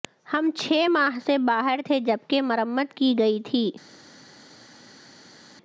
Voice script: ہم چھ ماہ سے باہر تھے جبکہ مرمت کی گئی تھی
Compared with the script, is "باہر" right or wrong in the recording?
right